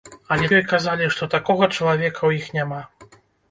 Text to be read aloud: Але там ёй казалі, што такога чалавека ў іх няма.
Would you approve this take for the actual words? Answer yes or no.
no